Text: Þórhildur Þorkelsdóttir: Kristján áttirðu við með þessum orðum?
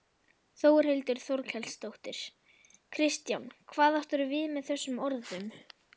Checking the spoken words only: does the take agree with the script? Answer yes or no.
no